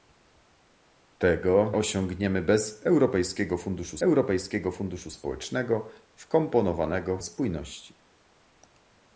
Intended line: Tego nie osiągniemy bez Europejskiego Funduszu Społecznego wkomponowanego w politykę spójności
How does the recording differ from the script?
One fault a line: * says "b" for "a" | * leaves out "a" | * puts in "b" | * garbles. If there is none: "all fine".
* leaves out "nie"
* puts in "Europejskiego Funduszu"
* leaves out "w politykę"